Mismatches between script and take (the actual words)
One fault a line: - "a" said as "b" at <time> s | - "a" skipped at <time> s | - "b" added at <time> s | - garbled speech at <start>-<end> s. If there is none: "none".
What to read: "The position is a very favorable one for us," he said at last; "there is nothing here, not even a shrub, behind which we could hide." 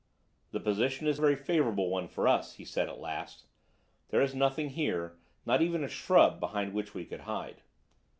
none